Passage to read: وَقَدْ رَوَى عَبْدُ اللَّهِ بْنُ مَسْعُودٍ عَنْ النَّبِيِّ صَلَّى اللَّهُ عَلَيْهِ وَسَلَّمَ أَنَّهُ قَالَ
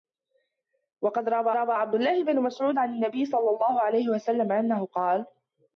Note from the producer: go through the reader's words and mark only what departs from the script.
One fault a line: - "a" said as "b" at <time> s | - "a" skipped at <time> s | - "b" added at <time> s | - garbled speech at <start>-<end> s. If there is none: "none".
- "رَوَى" added at 1.5 s